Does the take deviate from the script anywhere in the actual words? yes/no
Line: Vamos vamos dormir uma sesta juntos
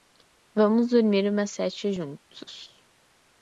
yes